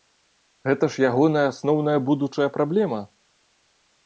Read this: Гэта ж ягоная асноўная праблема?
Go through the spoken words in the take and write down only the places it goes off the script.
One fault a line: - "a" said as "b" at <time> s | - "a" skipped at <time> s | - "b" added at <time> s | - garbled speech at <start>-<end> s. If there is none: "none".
- "будучая" added at 2.1 s